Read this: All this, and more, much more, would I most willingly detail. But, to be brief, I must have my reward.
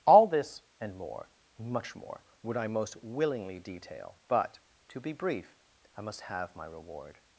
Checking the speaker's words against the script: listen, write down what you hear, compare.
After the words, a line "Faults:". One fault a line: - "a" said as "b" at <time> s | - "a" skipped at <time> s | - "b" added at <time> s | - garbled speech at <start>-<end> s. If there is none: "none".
All this, and more, much more, would I most willingly detail. But, to be brief, I must have my reward.
Faults:
none